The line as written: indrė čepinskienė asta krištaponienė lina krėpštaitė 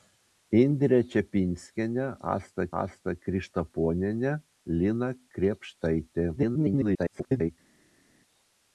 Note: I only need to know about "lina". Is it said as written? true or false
true